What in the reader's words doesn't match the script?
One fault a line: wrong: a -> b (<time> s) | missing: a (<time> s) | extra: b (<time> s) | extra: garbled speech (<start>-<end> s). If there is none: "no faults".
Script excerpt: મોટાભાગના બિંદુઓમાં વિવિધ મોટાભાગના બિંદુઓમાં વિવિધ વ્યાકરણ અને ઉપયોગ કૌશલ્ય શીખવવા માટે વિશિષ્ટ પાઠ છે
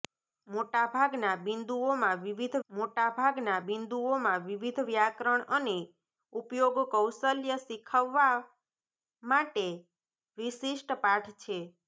no faults